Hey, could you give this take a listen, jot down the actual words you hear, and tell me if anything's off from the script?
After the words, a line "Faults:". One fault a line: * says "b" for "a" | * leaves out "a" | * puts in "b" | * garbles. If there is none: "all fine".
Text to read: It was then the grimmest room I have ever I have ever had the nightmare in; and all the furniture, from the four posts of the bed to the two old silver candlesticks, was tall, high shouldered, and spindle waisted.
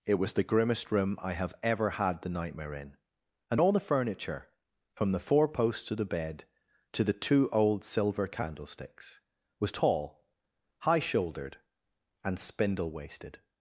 It was the grimmest room I have ever had the nightmare in; and all the furniture, from the four posts of the bed to the two old silver candlesticks, was tall, high shouldered, and spindle waisted.
Faults:
* leaves out "then"
* leaves out "I have ever"